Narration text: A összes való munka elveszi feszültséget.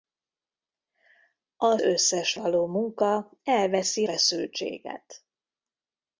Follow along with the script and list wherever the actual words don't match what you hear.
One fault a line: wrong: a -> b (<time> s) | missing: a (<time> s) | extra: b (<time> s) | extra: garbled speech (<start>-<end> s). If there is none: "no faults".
no faults